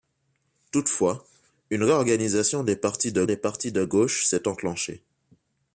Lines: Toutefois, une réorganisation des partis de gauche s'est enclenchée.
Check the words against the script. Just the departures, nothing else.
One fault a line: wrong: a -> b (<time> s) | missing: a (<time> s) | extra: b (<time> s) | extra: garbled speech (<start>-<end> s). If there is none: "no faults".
extra: des partis de (3.2 s)